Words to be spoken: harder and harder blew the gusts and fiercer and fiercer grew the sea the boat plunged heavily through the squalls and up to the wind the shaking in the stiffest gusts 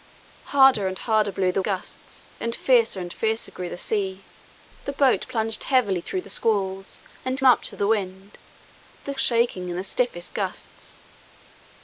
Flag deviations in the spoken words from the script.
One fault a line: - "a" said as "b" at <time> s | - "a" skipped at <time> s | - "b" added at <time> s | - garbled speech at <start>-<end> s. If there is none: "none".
none